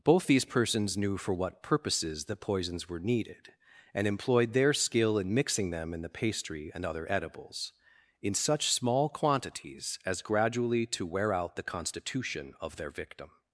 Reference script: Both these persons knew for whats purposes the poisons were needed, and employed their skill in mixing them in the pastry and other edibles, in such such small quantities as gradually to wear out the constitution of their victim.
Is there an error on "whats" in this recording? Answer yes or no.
yes